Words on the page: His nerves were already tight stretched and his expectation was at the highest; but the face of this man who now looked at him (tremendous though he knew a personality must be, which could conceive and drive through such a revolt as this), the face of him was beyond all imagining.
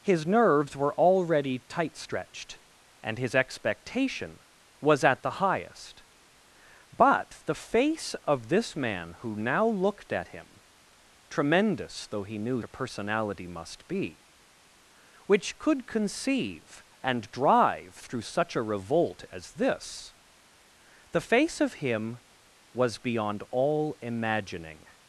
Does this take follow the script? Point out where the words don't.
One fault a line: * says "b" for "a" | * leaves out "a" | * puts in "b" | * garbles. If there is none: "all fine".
all fine